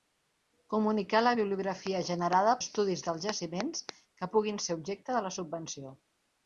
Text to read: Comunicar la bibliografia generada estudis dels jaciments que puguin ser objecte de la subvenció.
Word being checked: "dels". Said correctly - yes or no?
yes